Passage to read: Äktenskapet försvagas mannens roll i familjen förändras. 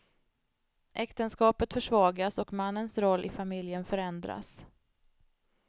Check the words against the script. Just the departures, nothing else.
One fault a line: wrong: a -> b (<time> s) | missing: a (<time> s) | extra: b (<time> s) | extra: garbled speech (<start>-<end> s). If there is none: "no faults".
extra: och (2.4 s)